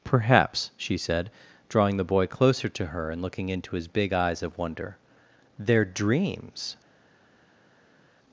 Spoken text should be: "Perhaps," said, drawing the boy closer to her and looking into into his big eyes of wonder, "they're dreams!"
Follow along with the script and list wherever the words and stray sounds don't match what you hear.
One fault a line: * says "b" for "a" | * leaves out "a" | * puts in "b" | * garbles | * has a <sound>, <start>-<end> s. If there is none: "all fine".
* puts in "she"
* leaves out "into"